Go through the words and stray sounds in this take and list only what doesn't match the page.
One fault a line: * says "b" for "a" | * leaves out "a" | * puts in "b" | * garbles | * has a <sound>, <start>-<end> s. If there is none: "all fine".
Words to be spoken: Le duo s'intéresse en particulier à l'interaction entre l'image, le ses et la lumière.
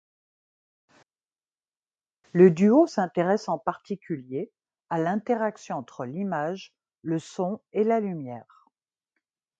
* says "son" for "ses"